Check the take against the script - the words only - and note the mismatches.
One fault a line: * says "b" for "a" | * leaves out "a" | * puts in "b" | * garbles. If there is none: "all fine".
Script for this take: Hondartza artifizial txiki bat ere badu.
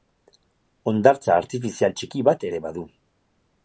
all fine